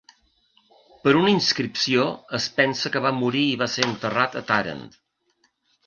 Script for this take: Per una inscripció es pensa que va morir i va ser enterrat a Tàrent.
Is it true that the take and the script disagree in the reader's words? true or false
false